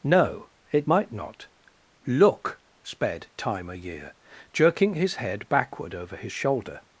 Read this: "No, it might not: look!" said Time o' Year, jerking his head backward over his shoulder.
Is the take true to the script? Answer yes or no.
no